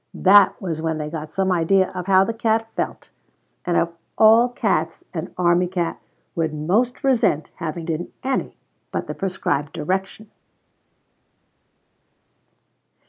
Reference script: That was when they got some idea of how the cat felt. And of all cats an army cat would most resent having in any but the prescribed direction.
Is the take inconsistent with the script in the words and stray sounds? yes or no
no